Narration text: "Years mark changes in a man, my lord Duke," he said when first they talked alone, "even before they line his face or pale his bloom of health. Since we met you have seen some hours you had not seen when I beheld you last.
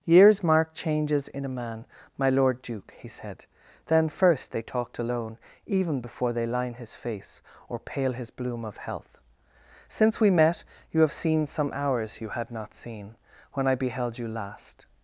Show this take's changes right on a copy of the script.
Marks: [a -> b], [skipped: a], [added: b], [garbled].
"Years mark changes in a man, my lord Duke," he said [when -> then] first they talked alone, "even before they line his face or pale his bloom of health. Since we met you have seen some hours you had not seen when I beheld you last.